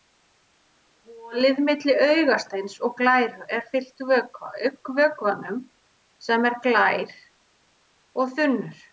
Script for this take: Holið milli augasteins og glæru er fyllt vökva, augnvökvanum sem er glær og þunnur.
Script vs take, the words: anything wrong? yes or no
no